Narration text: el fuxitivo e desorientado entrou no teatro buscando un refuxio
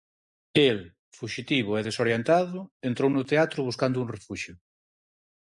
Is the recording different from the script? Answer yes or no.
no